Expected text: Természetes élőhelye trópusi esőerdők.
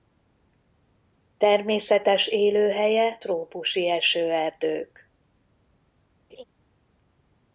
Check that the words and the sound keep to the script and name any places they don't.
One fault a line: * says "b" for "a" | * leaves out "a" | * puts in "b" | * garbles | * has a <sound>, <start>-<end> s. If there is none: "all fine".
* has a laugh, 6.3-6.4 s